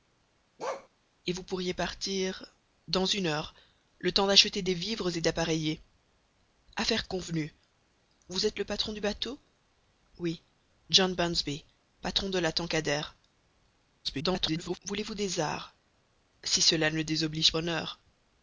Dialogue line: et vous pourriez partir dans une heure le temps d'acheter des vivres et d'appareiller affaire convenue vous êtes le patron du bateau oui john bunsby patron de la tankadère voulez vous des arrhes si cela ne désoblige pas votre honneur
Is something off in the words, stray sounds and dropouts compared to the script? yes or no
yes